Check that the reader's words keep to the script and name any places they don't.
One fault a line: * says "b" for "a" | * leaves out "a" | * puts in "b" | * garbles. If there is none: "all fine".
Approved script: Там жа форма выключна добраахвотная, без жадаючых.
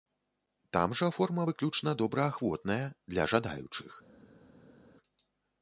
* says "для" for "без"